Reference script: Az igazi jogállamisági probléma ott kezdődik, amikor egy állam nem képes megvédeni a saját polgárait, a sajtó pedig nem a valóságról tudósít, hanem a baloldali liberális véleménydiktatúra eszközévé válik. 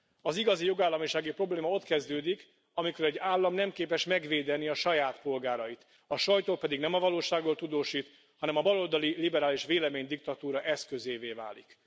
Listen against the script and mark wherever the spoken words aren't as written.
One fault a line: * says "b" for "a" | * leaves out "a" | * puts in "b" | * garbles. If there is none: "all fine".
all fine